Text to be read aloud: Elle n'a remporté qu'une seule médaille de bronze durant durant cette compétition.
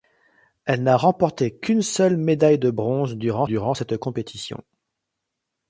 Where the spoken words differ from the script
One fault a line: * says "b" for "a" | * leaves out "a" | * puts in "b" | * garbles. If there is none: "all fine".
all fine